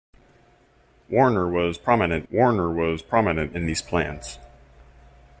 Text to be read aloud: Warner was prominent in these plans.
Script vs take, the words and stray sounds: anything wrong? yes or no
yes